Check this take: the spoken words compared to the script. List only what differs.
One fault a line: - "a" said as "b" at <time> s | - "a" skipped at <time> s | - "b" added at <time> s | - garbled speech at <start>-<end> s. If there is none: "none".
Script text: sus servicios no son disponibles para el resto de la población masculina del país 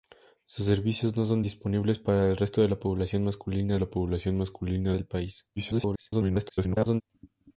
- "la población masculina" added at 3.8 s
- garbled speech at 5.6-7.0 s